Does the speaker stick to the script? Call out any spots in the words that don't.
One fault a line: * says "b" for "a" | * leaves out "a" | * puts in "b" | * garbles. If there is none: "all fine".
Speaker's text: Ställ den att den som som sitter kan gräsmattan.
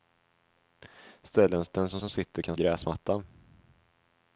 all fine